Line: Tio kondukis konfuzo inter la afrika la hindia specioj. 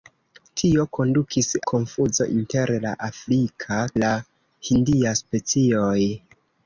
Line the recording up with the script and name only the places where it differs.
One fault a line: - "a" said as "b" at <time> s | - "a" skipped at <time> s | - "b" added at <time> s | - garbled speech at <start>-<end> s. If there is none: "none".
none